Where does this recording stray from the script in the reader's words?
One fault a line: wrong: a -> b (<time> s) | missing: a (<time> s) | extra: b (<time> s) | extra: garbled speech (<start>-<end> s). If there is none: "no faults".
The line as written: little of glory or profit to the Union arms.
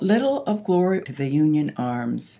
missing: or profit (1.0 s)